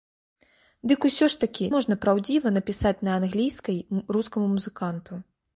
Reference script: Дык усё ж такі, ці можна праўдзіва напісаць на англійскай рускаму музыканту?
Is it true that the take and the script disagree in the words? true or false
true